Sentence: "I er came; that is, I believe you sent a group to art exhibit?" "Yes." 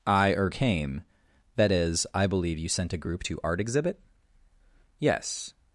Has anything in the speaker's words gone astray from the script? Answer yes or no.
no